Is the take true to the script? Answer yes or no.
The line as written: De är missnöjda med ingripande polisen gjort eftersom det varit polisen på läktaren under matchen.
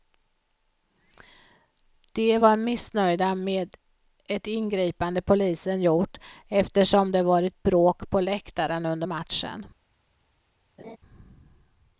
no